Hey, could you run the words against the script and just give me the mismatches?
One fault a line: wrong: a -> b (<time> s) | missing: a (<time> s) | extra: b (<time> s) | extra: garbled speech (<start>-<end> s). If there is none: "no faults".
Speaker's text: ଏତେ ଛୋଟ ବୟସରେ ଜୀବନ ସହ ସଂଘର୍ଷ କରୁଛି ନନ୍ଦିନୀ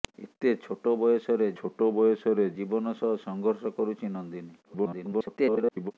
extra: ଛୋଟ ବୟସରେ (1.5 s)
extra: garbled speech (4.6-5.9 s)